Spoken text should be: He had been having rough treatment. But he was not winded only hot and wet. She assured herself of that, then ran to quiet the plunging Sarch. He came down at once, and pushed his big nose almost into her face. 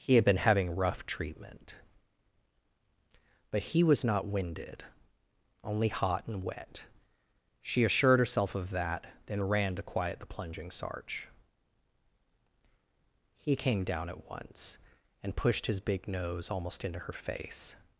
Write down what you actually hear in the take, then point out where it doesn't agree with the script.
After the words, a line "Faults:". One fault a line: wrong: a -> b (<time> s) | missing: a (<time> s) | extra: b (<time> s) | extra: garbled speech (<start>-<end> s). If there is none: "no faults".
He had been having rough treatment. But he was not winded only hot and wet. She assured herself of that, then ran to quiet the plunging Sarch. He came down at once, and pushed his big nose almost into her face.
Faults:
no faults